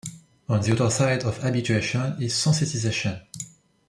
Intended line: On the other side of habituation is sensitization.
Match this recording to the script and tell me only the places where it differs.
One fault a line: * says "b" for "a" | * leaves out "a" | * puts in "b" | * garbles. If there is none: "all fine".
all fine